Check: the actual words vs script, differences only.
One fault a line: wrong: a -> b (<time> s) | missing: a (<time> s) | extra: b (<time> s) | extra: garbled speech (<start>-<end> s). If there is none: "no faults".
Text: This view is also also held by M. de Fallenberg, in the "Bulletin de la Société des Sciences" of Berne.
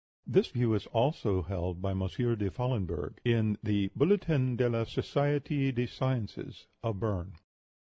missing: also (1.4 s)